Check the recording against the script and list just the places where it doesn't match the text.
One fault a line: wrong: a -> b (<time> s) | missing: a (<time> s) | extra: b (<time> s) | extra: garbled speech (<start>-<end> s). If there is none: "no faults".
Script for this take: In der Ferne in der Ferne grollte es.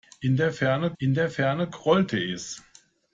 no faults